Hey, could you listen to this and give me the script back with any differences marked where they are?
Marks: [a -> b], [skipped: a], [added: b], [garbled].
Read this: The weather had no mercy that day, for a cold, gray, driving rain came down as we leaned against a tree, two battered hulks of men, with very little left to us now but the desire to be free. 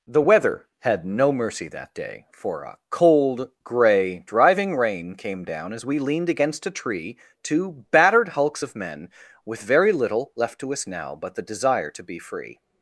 The weather had no mercy that day, for a cold, gray, driving rain came down as we leaned against a tree, two battered hulks of men, with very little left to us now but the desire to be free.